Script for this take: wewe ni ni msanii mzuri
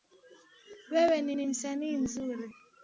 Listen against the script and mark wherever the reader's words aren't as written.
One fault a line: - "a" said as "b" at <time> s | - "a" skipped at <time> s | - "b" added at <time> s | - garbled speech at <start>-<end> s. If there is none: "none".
none